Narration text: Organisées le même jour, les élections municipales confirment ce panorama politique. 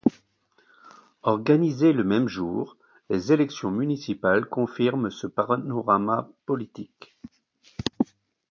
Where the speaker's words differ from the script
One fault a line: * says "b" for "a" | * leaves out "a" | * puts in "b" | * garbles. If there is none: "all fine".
all fine